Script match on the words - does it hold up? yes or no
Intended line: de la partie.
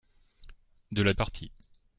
yes